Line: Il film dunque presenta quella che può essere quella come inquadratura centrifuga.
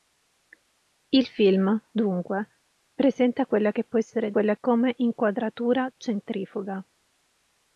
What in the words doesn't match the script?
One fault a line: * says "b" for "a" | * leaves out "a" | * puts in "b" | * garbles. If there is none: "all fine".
all fine